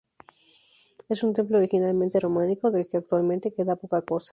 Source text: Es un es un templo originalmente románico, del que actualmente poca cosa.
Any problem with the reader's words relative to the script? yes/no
yes